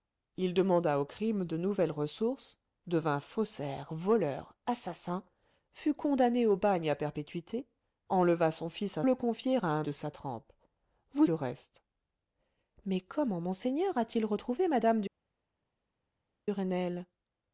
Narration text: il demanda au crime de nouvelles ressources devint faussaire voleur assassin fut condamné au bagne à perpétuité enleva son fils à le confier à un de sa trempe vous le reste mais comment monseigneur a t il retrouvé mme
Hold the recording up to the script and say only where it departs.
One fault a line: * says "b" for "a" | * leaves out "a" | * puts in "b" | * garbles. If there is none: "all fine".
all fine